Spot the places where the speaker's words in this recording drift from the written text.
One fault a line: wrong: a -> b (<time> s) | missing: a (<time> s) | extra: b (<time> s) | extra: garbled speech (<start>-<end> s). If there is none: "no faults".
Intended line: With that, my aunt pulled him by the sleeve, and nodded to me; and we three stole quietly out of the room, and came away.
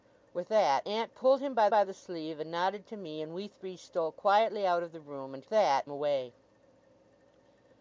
missing: my (0.9 s)
extra: by (1.7 s)
wrong: came -> that (5.5 s)